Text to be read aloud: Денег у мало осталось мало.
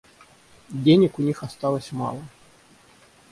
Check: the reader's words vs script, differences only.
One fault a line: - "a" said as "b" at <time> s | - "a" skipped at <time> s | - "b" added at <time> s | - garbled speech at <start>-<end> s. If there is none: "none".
- "мало" said as "них" at 1.2 s